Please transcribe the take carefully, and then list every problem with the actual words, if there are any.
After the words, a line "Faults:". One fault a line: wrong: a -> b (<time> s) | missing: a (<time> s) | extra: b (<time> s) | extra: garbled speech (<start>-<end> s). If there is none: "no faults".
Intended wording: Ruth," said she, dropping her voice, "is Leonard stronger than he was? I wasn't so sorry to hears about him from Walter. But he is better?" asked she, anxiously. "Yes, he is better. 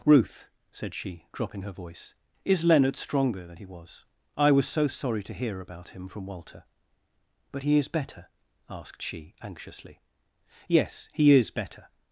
Ruth," said she, dropping her voice, "is Leonard stronger than he was? I was so sorry to hear about him from Walter. But he is better?" asked she, anxiously. "Yes, he is better.
Faults:
wrong: wasn't -> was (4.5 s)
wrong: hears -> hear (5.3 s)